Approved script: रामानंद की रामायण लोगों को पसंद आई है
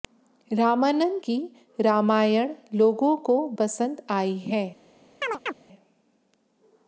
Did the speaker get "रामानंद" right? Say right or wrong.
right